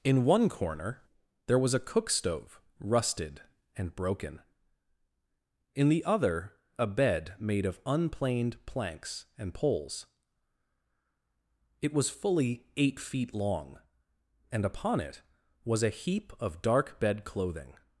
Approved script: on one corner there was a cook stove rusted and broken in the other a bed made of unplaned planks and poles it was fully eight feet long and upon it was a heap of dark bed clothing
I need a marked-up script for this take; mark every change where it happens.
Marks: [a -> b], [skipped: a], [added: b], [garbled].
[on -> in] one corner there was a cook stove rusted and broken in the other a bed made of unplaned planks and poles it was fully eight feet long and upon it was a heap of dark bed clothing